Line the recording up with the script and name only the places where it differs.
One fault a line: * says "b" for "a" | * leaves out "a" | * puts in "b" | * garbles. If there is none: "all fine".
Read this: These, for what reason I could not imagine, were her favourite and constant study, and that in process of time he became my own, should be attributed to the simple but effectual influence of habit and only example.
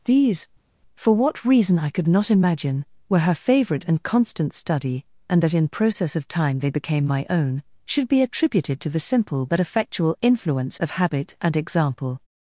* says "they" for "he"
* leaves out "only"